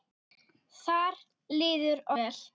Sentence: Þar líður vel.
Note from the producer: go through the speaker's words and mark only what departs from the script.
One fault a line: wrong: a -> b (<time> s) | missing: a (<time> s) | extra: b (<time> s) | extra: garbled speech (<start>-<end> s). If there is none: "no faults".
no faults